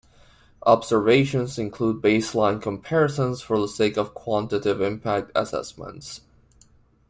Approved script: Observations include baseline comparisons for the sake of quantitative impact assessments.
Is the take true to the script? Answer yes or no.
yes